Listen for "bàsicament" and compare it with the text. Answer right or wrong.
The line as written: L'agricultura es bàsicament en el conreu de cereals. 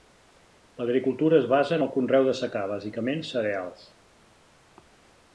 wrong